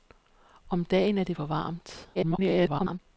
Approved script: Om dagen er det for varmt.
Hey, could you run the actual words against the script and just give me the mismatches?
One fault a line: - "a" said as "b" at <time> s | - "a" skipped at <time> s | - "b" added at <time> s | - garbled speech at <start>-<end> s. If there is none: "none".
- garbled speech at 2.1-3.0 s